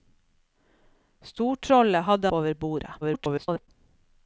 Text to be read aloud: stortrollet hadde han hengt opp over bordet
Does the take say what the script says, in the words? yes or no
no